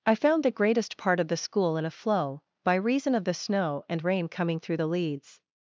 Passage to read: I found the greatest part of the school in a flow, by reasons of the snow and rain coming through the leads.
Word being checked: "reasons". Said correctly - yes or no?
no